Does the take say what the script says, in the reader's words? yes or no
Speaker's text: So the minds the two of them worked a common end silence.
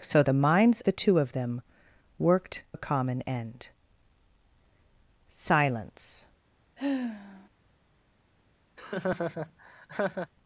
yes